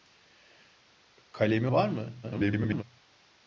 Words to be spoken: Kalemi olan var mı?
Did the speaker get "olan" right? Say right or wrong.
wrong